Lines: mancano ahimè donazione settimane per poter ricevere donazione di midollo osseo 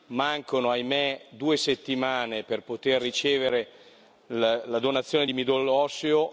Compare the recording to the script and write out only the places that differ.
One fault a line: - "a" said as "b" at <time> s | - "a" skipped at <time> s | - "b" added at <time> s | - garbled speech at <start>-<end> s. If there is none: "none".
- "donazione" said as "due" at 1.3 s
- "la" added at 4.3 s